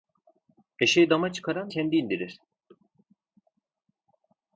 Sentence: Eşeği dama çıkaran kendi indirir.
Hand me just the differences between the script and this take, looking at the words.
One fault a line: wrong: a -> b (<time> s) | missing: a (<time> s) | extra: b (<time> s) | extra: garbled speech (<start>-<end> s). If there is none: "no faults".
no faults